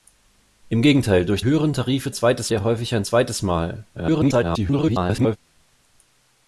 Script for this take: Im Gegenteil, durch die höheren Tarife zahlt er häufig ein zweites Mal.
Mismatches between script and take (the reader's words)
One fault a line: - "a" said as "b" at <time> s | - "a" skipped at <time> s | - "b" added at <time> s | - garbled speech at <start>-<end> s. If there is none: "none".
- "die" skipped at 1.4 s
- "zahlt" said as "zweites" at 2.1 s
- garbled speech at 3.9-5.4 s